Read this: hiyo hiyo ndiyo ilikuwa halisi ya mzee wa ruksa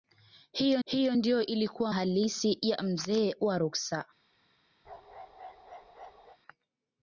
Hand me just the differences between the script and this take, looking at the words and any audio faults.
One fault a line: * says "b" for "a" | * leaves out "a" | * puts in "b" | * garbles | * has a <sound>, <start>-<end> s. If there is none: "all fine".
* has a bark, 4.8-6.4 s